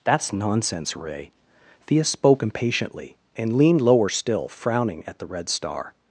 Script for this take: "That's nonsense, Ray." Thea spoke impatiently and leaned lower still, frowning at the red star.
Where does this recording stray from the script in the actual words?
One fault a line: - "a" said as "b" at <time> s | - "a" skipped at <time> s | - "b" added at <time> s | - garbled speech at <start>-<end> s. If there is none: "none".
none